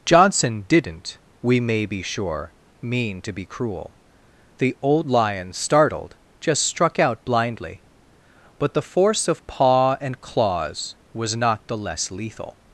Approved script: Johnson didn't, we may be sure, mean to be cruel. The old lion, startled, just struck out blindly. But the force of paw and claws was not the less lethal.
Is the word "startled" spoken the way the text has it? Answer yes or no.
yes